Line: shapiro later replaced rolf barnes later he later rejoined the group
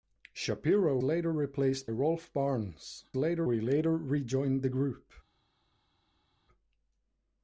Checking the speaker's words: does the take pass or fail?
pass